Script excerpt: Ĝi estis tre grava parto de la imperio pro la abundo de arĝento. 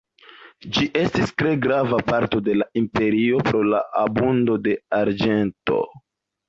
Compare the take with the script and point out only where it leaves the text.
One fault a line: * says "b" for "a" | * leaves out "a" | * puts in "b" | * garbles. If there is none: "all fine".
all fine